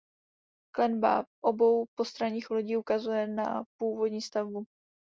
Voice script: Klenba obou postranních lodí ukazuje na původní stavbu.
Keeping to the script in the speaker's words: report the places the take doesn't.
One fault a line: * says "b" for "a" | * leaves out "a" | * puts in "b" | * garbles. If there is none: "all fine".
all fine